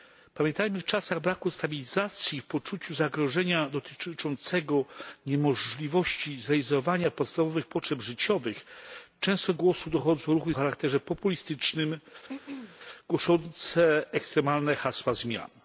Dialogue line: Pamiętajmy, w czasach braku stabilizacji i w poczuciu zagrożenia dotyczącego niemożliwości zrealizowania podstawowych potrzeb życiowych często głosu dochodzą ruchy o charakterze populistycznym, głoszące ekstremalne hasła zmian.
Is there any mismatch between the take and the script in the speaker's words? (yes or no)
no